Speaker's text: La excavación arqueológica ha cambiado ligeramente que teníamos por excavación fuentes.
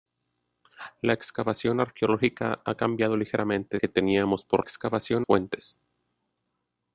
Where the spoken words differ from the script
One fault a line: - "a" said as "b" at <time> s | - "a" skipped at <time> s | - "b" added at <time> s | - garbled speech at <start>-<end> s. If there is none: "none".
none